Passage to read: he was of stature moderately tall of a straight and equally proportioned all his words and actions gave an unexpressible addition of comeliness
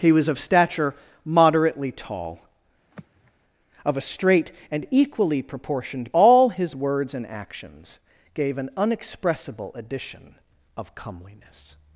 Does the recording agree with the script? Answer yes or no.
yes